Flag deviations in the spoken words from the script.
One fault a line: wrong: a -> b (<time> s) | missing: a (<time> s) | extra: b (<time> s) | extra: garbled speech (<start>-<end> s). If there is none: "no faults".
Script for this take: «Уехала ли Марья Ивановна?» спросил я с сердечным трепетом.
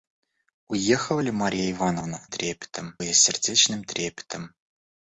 wrong: спросил -> трепетом (2.3 s)